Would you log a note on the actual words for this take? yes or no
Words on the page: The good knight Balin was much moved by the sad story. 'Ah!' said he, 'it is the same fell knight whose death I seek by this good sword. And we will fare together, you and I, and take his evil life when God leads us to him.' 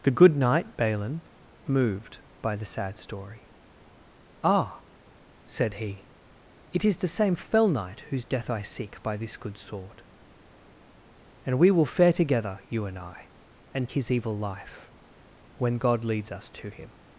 yes